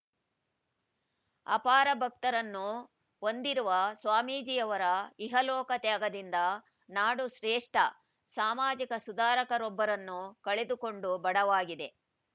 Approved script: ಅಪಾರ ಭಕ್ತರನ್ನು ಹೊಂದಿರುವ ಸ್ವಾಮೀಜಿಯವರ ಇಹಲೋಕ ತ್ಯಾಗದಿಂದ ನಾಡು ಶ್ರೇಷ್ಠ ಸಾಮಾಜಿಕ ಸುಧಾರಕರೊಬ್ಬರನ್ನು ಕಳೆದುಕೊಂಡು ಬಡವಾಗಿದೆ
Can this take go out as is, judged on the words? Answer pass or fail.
pass